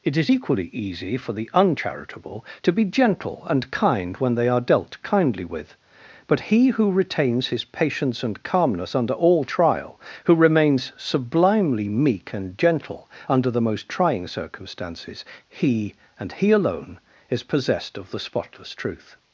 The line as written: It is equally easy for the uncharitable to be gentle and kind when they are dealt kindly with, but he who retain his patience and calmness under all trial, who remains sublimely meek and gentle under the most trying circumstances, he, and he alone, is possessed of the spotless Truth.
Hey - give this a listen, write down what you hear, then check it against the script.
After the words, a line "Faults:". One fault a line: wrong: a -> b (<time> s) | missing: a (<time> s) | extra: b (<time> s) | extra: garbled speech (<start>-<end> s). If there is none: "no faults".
It is equally easy for the uncharitable to be gentle and kind when they are dealt kindly with, but he who retains his patience and calmness under all trial, who remains sublimely meek and gentle under the most trying circumstances, he, and he alone, is possessed of the spotless Truth.
Faults:
wrong: retain -> retains (6.9 s)